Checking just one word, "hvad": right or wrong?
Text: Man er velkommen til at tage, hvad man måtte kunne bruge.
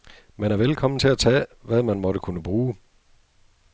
right